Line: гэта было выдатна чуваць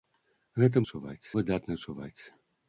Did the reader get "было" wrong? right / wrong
wrong